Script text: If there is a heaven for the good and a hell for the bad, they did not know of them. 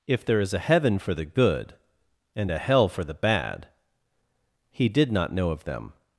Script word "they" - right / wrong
wrong